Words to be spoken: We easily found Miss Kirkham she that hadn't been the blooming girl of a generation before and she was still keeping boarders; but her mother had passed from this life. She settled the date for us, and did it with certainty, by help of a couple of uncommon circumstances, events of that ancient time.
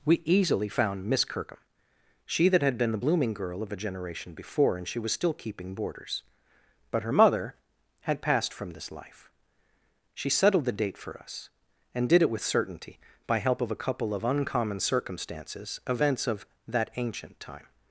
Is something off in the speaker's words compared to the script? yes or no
yes